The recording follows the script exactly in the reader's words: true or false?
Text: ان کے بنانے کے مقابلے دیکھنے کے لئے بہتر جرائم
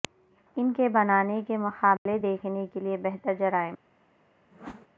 true